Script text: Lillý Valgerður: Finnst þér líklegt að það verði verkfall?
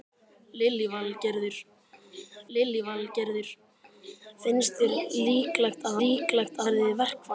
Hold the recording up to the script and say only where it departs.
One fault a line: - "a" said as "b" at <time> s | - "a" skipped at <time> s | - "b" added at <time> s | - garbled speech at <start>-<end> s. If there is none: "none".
- "lillý Valgerður" added at 2.6 s
- "það" said as "líklegt" at 6.1 s